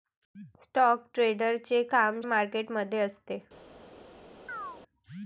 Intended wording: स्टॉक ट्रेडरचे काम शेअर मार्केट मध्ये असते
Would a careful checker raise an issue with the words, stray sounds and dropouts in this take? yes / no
yes